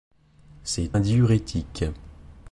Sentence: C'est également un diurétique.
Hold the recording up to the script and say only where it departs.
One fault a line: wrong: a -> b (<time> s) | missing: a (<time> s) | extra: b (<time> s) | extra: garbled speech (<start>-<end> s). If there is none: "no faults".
missing: également (1.0 s)